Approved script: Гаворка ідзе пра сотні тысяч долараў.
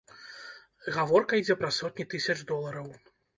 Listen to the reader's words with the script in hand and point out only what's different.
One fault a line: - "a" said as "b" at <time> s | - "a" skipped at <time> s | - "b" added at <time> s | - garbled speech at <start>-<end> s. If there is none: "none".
none